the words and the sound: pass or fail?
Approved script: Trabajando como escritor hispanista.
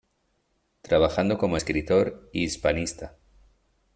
fail